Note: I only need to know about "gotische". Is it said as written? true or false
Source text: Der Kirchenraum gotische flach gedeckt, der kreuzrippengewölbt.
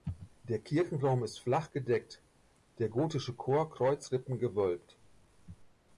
false